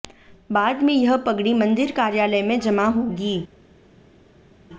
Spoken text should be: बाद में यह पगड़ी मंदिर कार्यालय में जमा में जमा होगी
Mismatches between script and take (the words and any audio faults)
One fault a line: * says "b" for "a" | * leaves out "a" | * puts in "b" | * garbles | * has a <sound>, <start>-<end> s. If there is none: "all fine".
* leaves out "में जमा"